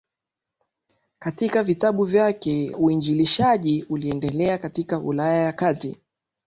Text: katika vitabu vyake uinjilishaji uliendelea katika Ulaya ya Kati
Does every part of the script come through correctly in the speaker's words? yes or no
yes